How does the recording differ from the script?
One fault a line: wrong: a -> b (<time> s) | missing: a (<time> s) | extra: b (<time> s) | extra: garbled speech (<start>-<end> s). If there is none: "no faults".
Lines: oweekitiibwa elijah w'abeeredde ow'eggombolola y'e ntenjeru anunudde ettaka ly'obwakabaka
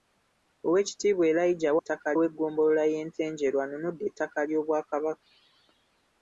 wrong: w'abeeredde -> ettaka (1.8 s)